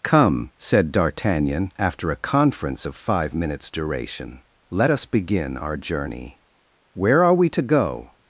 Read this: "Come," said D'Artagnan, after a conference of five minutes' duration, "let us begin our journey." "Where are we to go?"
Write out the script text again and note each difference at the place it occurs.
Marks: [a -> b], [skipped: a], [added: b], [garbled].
"Come," said D'Artagnan, after a conference of five minutes' duration, "let us begin our journey." "Where are we to go?"